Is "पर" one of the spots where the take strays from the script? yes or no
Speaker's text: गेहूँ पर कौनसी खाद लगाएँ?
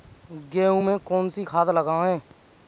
yes